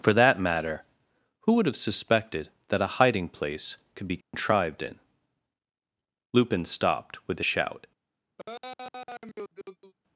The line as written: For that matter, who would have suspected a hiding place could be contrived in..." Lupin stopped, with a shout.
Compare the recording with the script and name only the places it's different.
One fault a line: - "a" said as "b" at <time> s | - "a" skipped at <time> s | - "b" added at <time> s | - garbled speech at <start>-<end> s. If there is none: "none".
- "that" added at 2.7 s